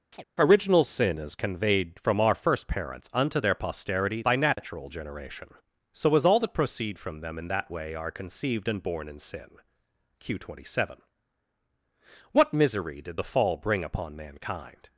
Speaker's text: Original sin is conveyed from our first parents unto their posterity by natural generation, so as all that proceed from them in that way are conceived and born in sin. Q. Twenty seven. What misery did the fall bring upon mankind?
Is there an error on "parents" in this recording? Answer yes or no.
no